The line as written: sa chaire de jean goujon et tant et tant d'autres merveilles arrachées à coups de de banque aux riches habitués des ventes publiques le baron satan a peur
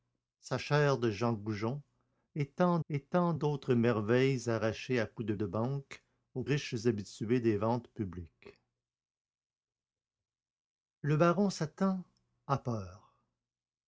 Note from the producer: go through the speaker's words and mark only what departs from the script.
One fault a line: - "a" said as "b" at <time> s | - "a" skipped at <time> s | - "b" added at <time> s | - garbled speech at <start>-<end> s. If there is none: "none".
none